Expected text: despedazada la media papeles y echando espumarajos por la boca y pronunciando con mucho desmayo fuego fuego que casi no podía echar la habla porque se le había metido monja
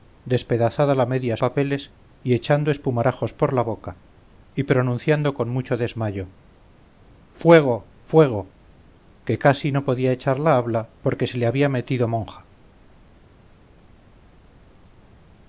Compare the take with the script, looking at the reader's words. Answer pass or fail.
pass